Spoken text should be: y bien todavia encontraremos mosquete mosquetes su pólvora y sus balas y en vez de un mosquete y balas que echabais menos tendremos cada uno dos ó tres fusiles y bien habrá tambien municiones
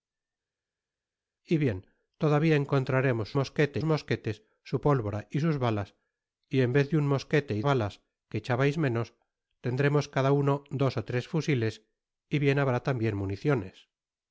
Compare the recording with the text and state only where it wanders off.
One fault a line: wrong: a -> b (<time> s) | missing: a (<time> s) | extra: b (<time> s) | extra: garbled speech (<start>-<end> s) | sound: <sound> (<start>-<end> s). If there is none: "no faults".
no faults